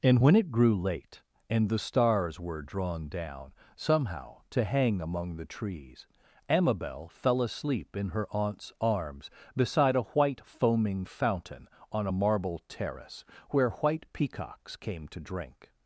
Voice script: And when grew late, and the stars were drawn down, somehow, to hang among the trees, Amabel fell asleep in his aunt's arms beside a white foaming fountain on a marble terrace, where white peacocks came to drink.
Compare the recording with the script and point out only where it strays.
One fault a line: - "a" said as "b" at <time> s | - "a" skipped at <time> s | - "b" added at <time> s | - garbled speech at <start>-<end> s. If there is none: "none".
- "it" added at 0.3 s
- "his" said as "her" at 8.1 s